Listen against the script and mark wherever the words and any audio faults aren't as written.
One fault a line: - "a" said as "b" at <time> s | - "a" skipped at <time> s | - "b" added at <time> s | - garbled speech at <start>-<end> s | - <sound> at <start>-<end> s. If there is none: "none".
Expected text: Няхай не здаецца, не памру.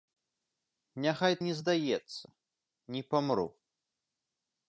none